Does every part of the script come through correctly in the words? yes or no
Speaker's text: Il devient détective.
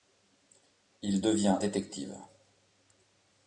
yes